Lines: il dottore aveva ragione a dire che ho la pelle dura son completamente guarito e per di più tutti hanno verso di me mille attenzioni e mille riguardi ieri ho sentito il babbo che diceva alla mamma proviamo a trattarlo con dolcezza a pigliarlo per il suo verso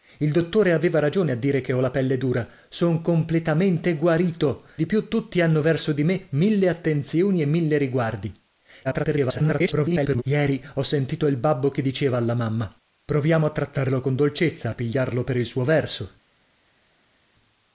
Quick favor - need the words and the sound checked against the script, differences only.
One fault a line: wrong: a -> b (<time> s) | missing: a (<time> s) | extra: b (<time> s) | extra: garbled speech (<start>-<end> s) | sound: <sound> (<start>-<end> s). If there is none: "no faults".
missing: e per (4.7 s)
extra: garbled speech (8.8-10.2 s)